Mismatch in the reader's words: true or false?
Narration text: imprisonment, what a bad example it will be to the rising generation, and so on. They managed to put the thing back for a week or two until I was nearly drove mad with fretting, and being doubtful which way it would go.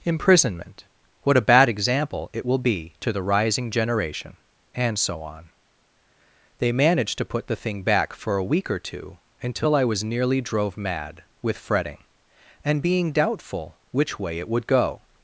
false